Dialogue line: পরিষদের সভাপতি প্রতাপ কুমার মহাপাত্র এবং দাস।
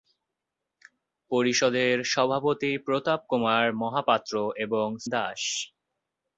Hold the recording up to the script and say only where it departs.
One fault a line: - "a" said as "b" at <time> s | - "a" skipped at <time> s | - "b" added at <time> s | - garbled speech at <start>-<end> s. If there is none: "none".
none